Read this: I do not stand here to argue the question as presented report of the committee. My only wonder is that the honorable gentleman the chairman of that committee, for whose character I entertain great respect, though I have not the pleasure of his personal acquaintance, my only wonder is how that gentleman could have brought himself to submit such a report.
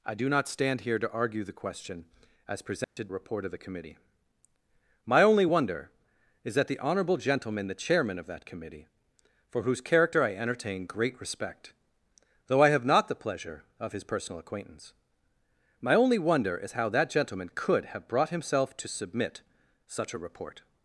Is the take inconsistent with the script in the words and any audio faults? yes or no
yes